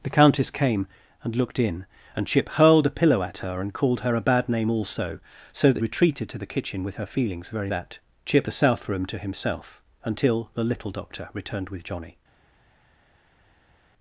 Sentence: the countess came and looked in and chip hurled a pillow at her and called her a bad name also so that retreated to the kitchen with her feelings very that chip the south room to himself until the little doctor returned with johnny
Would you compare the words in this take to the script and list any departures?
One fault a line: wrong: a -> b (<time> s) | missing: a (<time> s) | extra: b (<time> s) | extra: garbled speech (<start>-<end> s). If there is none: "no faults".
no faults